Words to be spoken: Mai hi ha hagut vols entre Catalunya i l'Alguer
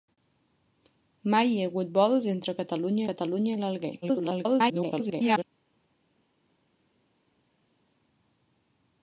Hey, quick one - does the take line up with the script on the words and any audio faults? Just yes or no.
no